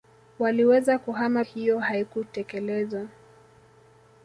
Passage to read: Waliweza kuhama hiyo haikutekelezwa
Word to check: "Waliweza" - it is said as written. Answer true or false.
true